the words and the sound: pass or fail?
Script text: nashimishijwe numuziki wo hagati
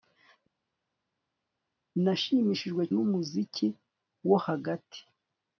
pass